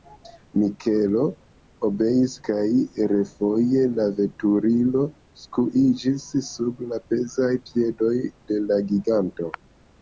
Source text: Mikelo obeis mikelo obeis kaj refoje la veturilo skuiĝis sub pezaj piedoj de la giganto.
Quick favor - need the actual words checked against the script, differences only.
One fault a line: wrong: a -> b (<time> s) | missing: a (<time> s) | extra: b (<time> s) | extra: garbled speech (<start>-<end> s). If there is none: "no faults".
missing: mikelo obeis (2.3 s)
extra: la (6.9 s)